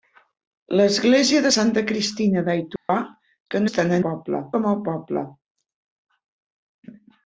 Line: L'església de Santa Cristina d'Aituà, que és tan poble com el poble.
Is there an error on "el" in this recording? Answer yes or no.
no